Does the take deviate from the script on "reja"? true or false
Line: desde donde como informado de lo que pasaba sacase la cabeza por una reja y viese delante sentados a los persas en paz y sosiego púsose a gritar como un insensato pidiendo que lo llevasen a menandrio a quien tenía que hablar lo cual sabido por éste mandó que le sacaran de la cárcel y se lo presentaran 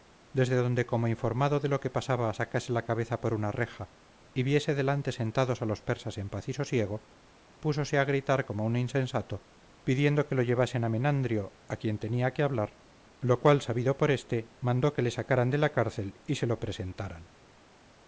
false